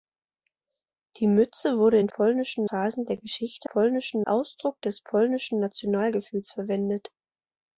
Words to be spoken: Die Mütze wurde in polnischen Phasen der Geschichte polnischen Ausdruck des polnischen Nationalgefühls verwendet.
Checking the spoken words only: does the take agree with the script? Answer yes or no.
yes